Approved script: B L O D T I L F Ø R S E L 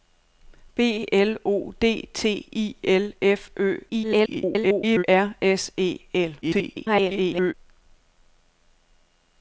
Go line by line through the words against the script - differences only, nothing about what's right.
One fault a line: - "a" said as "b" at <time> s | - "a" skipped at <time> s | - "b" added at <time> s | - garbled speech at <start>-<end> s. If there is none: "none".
- garbled speech at 3.9-5.0 s
- garbled speech at 6.4-7.5 s